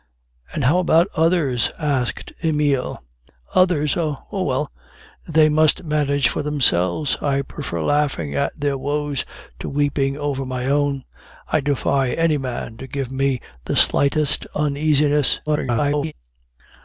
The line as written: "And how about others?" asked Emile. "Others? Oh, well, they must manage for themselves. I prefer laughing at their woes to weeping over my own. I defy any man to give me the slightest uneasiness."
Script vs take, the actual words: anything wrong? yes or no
yes